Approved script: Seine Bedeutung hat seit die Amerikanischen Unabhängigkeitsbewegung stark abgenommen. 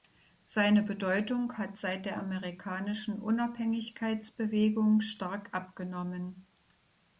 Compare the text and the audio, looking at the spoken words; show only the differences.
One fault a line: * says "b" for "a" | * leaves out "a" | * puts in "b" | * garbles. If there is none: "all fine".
* says "der" for "die"